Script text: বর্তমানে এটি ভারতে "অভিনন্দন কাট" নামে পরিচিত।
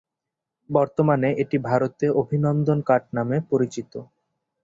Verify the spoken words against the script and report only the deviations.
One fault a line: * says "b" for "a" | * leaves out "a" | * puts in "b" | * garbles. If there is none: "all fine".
all fine